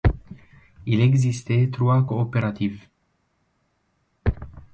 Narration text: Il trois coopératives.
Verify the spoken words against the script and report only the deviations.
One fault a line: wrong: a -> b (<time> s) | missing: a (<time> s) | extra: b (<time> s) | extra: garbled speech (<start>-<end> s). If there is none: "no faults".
extra: existait (1.0 s)